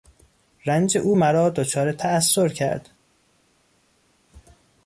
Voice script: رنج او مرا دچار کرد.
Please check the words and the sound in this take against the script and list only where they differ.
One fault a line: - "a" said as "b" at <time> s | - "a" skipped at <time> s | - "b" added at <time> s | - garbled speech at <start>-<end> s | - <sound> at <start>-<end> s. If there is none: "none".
- "تاثر" added at 1.9 s